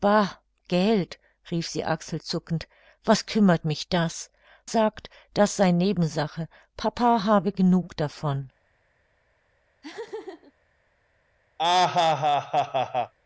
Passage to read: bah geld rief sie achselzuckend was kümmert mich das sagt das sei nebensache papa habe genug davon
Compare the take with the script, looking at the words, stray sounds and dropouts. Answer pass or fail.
fail